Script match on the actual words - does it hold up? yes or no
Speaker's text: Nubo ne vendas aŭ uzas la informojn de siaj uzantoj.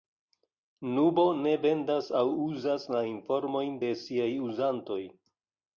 yes